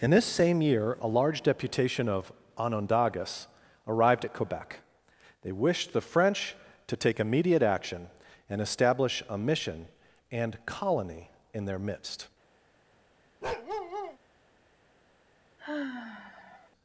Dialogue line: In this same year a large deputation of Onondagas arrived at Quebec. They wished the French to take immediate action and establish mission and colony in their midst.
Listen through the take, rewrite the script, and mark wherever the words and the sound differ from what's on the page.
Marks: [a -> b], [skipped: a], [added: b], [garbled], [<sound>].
In this same year a large deputation of Onondagas arrived at Quebec. They wished the French to take immediate action and establish [added: a] mission and colony in their midst. [bark] [sigh]